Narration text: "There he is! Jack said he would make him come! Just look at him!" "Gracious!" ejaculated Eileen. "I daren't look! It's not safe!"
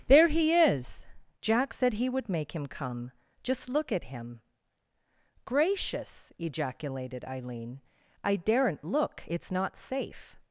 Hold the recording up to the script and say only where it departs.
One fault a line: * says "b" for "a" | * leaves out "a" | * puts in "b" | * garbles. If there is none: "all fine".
all fine